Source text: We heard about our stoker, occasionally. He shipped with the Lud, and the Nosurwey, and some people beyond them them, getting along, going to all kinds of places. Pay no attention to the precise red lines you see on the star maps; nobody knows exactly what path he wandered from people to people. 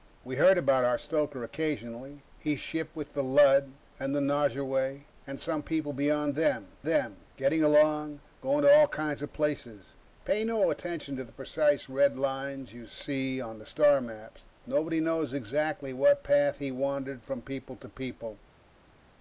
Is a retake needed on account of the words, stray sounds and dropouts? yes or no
no